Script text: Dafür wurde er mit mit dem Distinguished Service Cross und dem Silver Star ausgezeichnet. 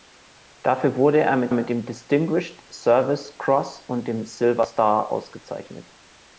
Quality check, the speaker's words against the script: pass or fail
pass